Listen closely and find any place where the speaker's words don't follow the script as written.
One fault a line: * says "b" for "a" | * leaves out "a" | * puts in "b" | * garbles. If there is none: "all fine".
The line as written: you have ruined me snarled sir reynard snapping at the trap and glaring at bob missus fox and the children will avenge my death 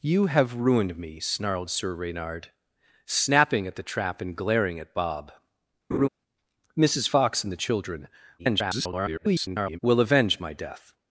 * garbles